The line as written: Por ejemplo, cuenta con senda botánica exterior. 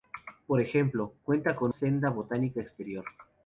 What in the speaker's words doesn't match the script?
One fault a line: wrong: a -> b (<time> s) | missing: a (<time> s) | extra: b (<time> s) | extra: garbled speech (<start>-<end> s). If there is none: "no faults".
no faults